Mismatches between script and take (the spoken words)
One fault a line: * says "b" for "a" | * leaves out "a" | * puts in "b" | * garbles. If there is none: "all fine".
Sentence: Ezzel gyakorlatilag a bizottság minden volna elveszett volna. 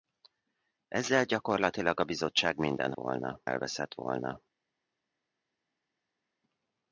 all fine